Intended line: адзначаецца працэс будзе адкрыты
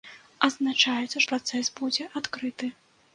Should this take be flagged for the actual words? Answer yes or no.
no